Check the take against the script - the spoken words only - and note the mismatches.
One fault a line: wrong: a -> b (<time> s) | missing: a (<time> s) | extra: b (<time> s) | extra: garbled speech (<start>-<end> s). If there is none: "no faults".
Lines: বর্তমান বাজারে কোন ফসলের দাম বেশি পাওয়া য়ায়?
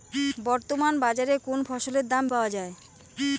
missing: বেশি (2.2 s)